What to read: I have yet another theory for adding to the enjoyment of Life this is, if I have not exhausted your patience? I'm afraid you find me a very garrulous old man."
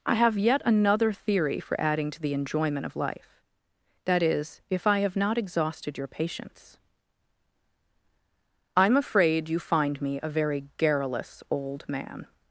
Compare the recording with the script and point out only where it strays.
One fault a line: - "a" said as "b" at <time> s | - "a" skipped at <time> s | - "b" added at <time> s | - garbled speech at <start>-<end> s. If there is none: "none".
- "this" said as "that" at 4.0 s